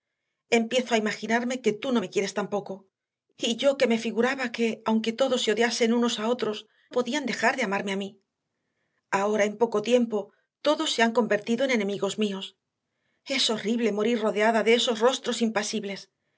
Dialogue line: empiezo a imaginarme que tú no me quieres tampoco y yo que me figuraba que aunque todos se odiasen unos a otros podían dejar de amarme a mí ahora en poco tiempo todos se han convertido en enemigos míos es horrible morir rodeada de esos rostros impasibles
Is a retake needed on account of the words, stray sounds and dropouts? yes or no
no